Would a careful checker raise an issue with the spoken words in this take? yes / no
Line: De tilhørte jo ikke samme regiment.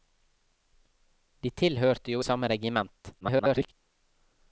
yes